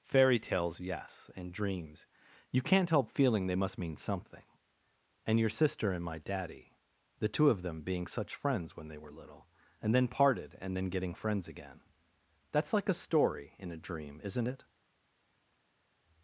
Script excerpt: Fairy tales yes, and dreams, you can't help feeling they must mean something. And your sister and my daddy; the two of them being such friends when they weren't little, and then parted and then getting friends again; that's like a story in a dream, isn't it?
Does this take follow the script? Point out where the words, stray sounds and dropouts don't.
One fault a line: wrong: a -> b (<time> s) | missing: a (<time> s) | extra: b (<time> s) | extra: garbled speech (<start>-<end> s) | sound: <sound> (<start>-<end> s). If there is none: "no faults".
wrong: weren't -> were (9.0 s)